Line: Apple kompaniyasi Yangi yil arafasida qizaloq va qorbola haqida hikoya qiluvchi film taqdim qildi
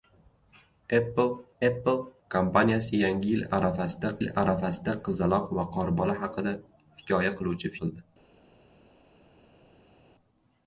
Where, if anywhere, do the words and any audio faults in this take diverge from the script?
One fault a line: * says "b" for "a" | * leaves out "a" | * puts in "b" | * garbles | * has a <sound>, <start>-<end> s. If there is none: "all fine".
* puts in "apple"
* puts in "yil arafasida"
* leaves out "film taqdim"